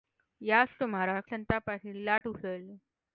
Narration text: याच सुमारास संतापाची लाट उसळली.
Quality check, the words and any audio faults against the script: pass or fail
fail